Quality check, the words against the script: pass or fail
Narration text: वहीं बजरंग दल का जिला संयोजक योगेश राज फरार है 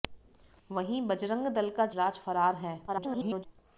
fail